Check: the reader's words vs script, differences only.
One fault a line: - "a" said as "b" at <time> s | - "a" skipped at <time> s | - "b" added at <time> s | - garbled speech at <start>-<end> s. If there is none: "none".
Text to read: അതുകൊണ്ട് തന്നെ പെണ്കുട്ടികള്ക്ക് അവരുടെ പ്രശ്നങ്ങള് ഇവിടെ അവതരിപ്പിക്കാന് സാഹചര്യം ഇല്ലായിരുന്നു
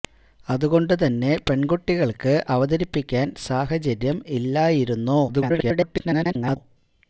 - "അവരുടെ പ്രശ്നങ്ങള് ഇവിടെ" skipped at 2.3 s
- garbled speech at 5.3-6.6 s